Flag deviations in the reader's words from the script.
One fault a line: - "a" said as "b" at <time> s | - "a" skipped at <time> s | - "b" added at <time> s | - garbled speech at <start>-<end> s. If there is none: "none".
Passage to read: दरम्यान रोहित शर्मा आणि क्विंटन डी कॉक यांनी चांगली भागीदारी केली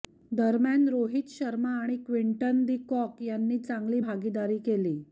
none